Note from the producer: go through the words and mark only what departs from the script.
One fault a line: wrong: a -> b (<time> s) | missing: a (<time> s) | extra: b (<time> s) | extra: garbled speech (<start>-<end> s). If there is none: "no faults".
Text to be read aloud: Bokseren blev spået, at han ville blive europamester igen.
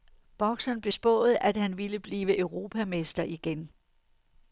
no faults